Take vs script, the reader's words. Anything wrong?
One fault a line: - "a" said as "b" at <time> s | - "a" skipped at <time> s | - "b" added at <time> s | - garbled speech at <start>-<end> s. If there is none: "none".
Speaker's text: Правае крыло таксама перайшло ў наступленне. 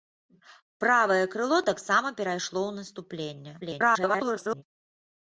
- garbled speech at 3.6-4.6 s